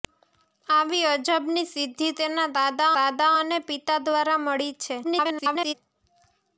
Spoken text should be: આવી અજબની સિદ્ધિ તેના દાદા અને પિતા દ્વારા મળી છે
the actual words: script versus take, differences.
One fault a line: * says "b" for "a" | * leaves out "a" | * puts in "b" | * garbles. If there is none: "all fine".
* puts in "દાદા"
* garbles